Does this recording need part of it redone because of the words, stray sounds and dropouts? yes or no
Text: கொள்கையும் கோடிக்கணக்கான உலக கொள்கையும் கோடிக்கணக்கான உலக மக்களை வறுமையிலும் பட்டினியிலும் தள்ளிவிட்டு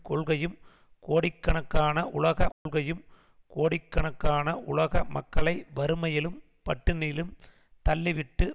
yes